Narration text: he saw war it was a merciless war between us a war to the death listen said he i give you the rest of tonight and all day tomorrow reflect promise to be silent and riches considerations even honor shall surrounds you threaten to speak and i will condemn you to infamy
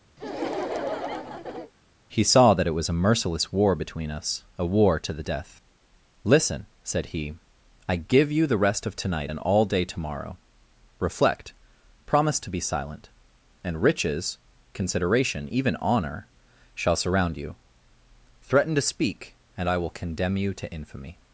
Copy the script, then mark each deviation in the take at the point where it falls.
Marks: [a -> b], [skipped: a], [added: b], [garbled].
he saw [war -> that] it was a merciless war between us a war to the death listen said he i give you the rest of tonight and all day tomorrow reflect promise to be silent and riches [considerations -> consideration] even honor shall [surrounds -> surround] you threaten to speak and i will condemn you to infamy